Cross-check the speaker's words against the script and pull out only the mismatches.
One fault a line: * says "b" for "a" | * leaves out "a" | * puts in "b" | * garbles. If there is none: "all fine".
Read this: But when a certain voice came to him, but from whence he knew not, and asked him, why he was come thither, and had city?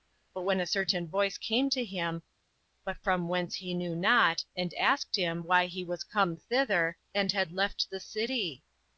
* puts in "left the"